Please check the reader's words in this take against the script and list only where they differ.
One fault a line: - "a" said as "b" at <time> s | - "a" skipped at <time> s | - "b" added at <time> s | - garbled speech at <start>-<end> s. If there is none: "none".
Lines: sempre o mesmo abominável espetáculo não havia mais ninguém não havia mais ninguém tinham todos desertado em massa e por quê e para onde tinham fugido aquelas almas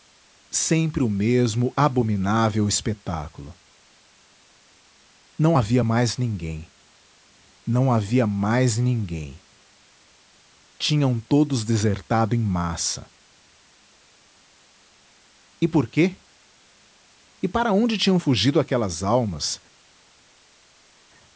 none